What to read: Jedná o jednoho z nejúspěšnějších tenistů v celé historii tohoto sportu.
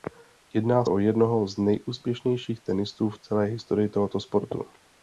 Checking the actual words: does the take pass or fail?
pass